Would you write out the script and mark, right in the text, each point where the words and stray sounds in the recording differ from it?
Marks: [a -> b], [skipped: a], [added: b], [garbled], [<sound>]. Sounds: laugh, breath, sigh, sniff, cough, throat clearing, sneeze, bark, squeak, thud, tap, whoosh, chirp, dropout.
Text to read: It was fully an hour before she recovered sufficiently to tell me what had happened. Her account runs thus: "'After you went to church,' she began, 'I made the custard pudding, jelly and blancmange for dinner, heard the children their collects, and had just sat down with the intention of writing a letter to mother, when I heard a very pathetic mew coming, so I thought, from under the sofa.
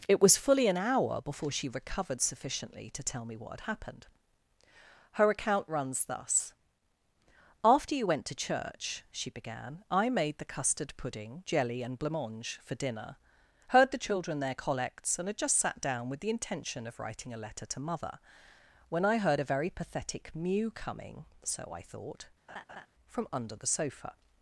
It was fully an hour before she recovered sufficiently to tell me what had happened. Her account runs thus: "'After you went to church,' she began, 'I made the custard pudding, jelly and blancmange for dinner, heard the children their collects, and had just sat down with the intention of writing a letter to mother, when I heard a very pathetic mew coming, so I thought, [laugh] from under the sofa.